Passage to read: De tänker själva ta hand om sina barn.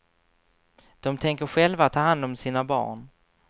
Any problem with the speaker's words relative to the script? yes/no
no